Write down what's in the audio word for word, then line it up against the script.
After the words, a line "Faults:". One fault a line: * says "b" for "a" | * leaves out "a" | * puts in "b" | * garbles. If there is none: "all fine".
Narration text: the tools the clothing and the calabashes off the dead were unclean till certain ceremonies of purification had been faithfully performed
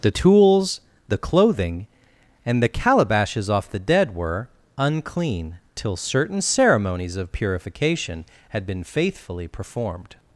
the tools the clothing and the calabashes off the dead were unclean till certain ceremonies of purification had been faithfully performed
Faults:
all fine